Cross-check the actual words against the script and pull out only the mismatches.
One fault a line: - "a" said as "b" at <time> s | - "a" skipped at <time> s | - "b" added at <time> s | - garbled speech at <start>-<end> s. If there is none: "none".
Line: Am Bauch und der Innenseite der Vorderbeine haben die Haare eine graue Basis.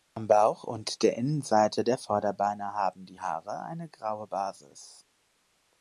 none